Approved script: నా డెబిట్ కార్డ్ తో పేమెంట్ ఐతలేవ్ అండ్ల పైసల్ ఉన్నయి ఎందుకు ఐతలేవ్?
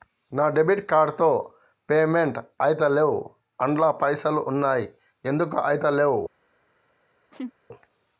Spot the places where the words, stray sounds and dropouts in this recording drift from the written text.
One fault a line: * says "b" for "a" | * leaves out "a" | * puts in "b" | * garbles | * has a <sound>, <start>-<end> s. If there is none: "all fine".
* has a laugh, 7.3-7.5 s